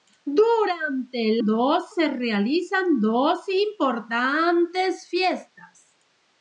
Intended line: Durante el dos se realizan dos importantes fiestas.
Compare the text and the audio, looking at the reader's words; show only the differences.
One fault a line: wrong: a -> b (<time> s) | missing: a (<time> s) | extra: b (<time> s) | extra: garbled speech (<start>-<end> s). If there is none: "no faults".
no faults